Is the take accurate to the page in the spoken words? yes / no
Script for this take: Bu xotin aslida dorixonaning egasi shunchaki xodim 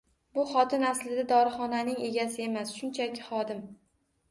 no